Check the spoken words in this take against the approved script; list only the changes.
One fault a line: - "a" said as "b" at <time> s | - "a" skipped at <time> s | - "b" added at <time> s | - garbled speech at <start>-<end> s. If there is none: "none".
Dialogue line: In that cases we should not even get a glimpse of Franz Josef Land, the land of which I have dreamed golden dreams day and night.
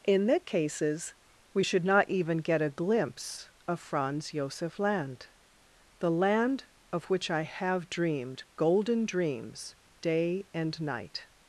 none